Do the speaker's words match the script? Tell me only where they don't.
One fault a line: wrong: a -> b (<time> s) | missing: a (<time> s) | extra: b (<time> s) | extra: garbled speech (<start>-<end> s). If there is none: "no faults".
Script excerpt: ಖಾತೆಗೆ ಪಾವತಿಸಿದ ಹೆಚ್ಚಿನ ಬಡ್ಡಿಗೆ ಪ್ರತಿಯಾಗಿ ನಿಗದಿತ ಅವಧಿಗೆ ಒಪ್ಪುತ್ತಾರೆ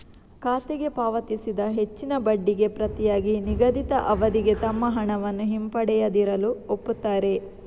extra: ತಮ್ಮ ಹಣವನ್ನು ಹಿಂಪಡೆಯದಿರಲು (4.6 s)